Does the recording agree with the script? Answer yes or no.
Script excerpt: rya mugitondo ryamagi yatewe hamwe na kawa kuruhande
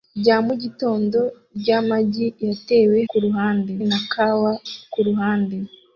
no